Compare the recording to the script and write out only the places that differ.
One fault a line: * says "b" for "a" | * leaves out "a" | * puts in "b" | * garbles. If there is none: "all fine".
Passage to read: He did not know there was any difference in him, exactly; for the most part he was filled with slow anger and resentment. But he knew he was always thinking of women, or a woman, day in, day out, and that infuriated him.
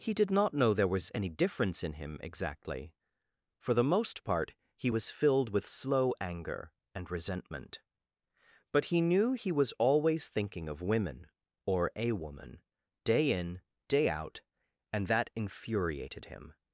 all fine